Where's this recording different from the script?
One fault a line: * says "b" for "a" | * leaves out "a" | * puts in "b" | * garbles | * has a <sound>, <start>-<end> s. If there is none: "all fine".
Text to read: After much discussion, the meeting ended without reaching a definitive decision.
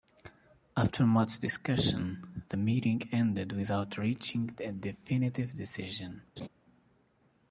* has a laugh, 6.4-6.5 s